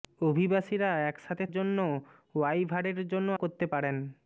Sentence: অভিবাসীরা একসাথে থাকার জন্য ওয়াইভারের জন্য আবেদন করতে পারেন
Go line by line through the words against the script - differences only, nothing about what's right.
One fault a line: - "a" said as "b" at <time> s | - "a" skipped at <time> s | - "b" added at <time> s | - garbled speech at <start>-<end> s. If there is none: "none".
- "থাকার" skipped at 1.4 s
- "আবেদন" skipped at 3.3 s